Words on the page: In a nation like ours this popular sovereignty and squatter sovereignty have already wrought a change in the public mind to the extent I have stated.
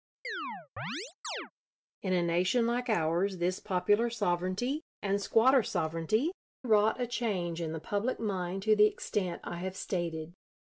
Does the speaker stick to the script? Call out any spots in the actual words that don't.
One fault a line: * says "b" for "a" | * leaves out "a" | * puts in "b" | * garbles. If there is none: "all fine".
* leaves out "have already"